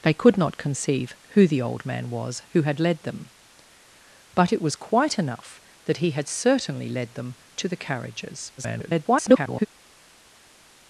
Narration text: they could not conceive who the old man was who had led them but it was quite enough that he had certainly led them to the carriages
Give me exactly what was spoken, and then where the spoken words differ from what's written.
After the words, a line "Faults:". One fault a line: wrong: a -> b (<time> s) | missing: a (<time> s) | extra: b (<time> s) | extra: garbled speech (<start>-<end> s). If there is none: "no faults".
they could not conceive who the old man was who had led them but it was quite enough that he had certainly led them to the carriages [garbled]
Faults:
extra: garbled speech (8.6-9.7 s)